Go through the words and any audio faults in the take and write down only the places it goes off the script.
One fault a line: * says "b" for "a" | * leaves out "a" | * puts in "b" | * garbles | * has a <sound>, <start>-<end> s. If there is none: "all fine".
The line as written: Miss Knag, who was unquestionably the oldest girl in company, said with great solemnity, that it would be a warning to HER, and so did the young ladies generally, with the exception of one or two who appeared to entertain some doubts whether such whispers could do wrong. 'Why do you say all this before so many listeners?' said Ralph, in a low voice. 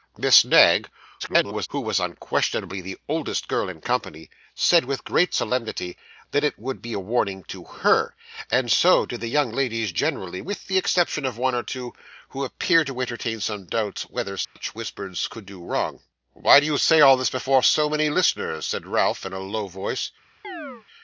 * garbles
* has a dropout, 14.4-14.6 s
* has a chirp, 20.4-20.9 s